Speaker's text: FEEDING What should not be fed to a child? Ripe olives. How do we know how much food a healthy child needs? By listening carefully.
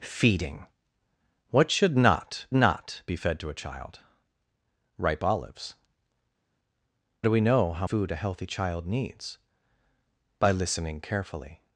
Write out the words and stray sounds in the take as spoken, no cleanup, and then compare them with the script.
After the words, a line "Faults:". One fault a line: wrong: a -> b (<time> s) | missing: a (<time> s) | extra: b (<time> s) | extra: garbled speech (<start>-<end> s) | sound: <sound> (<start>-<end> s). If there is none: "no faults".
FEEDING What should not not be fed to a child? Ripe olives. Do we know how food a healthy child needs? By listening carefully.
Faults:
extra: not (2.5 s)
missing: How (5.7 s)
missing: much (7.9 s)